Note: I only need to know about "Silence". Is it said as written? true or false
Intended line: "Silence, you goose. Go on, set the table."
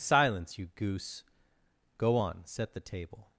true